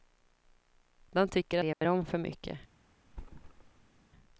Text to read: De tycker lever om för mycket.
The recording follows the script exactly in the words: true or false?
true